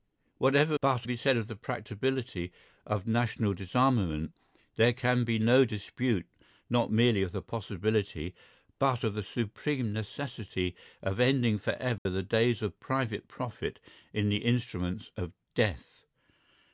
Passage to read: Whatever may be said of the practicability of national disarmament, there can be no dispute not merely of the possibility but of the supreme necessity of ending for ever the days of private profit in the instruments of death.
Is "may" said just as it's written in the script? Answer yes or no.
no